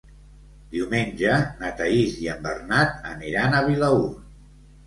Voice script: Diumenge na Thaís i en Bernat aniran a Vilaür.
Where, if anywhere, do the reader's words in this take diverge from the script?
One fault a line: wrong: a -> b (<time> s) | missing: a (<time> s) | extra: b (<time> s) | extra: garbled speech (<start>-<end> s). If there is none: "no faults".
no faults